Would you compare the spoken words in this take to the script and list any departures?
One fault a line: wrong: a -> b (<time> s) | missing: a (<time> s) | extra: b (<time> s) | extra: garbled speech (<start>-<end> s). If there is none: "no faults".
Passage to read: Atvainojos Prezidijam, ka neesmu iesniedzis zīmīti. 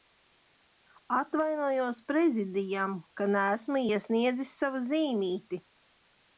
extra: savu (4.6 s)